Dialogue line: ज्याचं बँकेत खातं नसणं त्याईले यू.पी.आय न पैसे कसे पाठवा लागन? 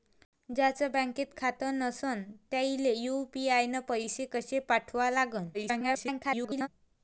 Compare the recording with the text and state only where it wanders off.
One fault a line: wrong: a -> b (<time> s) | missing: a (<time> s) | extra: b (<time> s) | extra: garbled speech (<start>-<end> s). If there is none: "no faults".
extra: garbled speech (5.5-6.7 s)